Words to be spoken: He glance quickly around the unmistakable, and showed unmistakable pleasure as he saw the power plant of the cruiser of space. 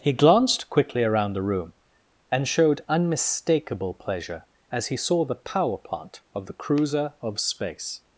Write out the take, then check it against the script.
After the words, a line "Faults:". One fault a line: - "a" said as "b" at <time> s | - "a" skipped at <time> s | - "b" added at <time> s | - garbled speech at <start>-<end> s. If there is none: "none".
He glanced quickly around the room, and showed unmistakable pleasure as he saw the power plant of the cruiser of space.
Faults:
- "glance" said as "glanced" at 0.1 s
- "unmistakable" said as "room" at 1.4 s